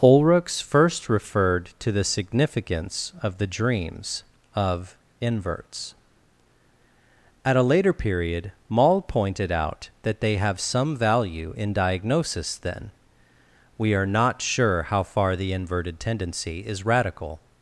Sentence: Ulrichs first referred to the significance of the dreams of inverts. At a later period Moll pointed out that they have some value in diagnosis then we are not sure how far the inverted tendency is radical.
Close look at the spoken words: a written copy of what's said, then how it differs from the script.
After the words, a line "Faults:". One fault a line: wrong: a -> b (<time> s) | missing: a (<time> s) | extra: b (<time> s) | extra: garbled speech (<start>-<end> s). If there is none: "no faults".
Ulrichs first referred to the significance of the dreams of inverts. At a later period Moll pointed out that they have some value in diagnosis then we are not sure how far the inverted tendency is radical.
Faults:
no faults